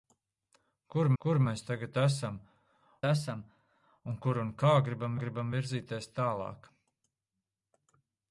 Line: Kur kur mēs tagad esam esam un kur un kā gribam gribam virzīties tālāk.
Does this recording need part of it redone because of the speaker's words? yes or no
no